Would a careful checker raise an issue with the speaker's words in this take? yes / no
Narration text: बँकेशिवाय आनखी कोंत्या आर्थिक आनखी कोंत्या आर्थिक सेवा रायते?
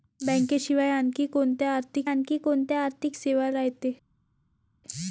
no